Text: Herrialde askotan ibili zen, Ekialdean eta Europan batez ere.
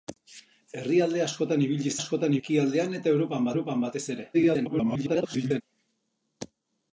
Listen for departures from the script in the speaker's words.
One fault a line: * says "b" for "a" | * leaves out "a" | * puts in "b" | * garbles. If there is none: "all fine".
* says "askotan" for "zen"
* puts in "Europan"
* garbles